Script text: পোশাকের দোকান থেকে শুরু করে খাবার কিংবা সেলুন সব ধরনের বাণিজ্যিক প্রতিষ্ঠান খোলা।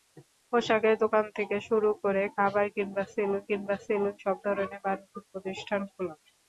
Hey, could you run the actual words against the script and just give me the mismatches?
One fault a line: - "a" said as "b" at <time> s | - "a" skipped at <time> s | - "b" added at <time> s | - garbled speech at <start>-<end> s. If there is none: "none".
- "কিংবা সেলুন" added at 3.5 s